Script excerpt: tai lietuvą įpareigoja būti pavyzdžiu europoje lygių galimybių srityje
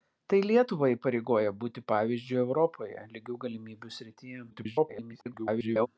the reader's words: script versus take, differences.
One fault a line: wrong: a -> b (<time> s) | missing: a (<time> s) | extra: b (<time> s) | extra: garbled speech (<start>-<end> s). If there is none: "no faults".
extra: garbled speech (4.5-5.9 s)